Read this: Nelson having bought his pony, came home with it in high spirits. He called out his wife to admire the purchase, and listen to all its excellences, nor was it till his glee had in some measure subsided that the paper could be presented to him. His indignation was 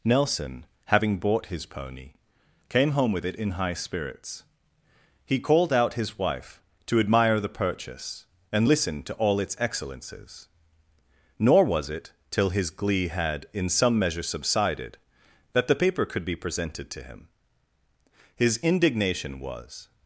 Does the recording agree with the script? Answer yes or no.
yes